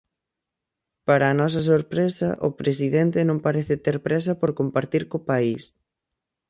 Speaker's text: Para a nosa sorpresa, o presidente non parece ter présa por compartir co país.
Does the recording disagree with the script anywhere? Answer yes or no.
no